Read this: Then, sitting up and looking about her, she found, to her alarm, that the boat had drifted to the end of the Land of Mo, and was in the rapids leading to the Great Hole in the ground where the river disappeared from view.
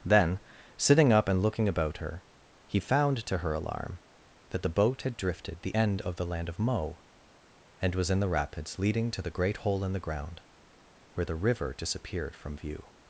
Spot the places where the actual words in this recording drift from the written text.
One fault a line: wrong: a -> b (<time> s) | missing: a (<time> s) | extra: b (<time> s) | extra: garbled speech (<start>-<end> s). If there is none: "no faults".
wrong: she -> he (2.6 s)
missing: to (5.6 s)